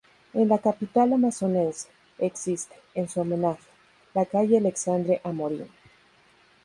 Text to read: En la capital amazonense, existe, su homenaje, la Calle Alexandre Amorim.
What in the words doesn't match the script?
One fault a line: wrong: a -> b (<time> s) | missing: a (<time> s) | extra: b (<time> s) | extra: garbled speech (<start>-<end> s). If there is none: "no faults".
extra: en (3.0 s)